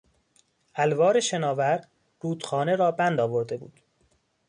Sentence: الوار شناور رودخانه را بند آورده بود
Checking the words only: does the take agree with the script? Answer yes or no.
yes